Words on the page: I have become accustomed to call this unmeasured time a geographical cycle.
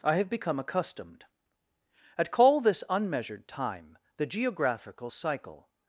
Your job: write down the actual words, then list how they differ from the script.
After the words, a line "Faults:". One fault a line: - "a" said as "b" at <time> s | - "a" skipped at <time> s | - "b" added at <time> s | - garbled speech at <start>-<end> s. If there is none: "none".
I have become accustomed at call this unmeasured time the geographical cycle.
Faults:
- "to" said as "at" at 2.2 s
- "a" said as "the" at 4.2 s